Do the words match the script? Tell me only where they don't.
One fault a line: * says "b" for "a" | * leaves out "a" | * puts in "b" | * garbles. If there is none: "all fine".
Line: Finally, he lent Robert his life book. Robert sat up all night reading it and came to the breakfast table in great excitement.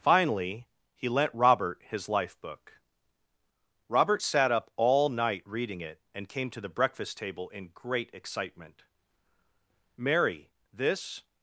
* puts in "Mary this"